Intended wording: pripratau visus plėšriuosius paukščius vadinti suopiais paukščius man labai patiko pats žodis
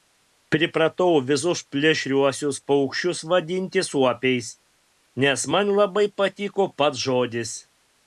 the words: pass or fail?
fail